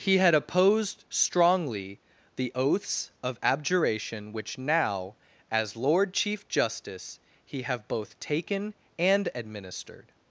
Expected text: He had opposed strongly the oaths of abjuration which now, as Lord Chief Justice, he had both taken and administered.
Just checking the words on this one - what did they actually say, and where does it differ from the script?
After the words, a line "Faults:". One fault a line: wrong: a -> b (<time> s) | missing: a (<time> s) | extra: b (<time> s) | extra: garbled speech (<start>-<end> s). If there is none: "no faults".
He had opposed strongly the oaths of abjuration which now, as Lord Chief Justice, he have both taken and administered.
Faults:
wrong: had -> have (7.6 s)